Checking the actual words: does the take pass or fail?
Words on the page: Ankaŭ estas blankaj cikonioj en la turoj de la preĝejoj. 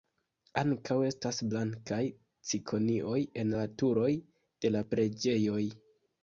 pass